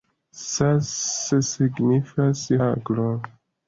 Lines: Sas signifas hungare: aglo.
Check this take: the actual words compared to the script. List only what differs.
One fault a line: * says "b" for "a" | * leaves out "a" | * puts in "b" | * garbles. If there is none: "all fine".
* leaves out "hungare"